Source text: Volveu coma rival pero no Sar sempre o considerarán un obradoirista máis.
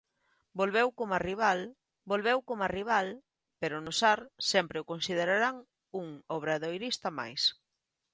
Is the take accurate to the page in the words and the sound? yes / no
no